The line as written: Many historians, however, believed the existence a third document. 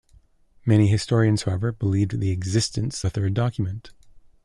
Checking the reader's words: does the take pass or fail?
pass